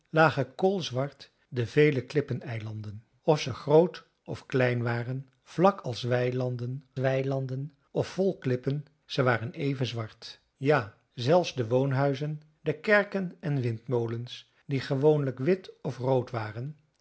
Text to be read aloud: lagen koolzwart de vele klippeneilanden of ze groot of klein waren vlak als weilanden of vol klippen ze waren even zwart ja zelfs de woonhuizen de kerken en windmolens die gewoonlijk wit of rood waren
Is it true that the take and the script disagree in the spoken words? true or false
true